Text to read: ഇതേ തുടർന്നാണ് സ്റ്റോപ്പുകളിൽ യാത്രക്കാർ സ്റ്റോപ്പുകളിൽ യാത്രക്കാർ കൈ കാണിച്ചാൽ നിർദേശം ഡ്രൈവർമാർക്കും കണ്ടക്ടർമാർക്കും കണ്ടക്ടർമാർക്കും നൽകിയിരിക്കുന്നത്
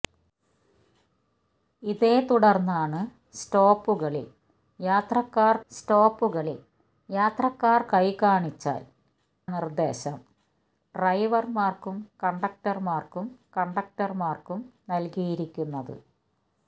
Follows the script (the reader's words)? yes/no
yes